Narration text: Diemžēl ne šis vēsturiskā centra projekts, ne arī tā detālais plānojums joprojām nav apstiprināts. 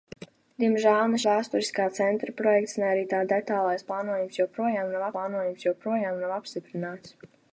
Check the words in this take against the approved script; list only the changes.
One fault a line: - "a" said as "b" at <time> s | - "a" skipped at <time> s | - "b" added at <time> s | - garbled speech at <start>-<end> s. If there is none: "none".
- "šis" skipped at 1.2 s
- "plānojums joprojām nav" added at 5.2 s